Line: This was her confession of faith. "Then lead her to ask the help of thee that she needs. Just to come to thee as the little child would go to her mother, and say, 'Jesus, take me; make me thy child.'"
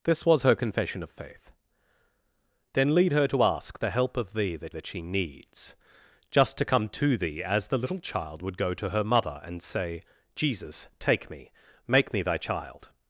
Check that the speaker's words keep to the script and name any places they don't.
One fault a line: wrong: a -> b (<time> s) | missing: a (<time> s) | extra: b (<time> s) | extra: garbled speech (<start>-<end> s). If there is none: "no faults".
extra: that (4.7 s)